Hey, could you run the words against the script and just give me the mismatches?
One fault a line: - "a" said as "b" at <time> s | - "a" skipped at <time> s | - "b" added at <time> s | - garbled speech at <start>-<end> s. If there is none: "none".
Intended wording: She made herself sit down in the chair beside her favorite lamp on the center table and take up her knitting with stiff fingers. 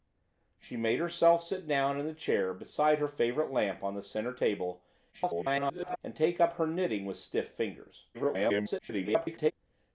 - garbled speech at 5.1-6.0 s
- garbled speech at 8.1-9.5 s